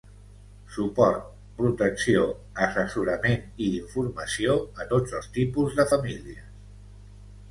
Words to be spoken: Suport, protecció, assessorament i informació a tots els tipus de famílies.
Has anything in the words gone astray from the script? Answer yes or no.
no